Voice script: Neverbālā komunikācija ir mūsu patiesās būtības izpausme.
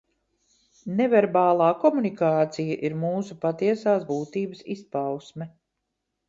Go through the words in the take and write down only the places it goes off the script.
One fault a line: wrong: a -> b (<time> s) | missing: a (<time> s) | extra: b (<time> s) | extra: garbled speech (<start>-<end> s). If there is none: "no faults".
no faults